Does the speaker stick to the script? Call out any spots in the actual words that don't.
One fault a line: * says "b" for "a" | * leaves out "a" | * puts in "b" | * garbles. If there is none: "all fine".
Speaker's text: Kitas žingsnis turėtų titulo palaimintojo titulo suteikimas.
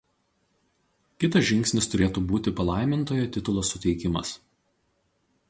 * says "būti" for "titulo"